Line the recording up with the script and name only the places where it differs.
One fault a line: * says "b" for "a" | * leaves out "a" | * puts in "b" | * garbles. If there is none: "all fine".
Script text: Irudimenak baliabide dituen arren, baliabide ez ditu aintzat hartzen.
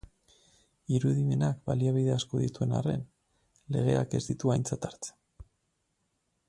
* puts in "asko"
* says "legeak" for "baliabide"